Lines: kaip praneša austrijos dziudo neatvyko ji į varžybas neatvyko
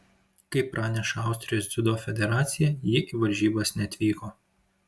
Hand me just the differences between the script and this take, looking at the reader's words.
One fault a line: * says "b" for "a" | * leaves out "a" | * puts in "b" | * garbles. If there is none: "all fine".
* says "federacija" for "neatvyko"